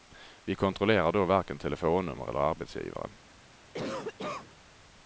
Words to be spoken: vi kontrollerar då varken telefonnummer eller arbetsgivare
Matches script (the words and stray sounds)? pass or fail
fail